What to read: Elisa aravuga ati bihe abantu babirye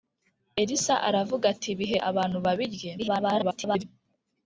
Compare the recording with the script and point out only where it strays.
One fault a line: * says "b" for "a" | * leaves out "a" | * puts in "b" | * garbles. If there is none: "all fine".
* garbles